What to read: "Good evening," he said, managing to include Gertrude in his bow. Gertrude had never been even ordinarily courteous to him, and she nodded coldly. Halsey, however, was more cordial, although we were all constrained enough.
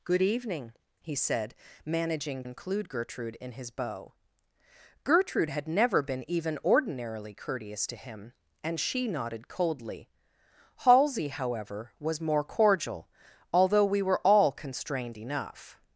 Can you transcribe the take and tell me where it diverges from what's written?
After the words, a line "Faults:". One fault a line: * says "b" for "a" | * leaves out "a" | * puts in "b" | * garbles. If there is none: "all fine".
"Good evening," he said, managing include Gertrude in his bow. Gertrude had never been even ordinarily courteous to him, and she nodded coldly. Halsey, however, was more cordial, although we were all constrained enough.
Faults:
* leaves out "to"